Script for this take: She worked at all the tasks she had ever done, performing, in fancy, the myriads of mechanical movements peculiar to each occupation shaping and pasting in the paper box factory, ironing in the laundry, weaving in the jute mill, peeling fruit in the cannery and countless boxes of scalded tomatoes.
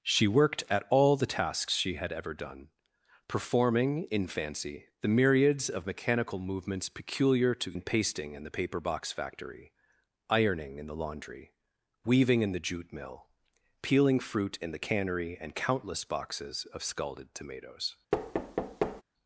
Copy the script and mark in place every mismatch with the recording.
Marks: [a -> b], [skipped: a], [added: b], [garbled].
She worked at all the tasks she had ever done, performing, in fancy, the myriads of mechanical movements peculiar to [skipped: each occupation shaping] and pasting in the paper box factory, ironing in the laundry, weaving in the jute mill, peeling fruit in the cannery and countless boxes of scalded tomatoes.